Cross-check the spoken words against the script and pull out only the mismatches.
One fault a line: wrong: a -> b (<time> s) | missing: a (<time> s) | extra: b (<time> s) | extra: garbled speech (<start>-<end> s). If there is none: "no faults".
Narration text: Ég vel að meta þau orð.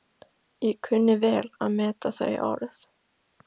extra: kunni (0.9 s)